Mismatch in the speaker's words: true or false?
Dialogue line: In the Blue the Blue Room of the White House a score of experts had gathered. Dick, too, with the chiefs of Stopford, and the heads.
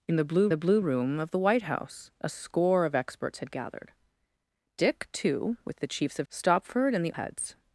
false